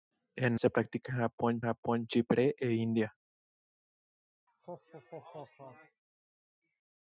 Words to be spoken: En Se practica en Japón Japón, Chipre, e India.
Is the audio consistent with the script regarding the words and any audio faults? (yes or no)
no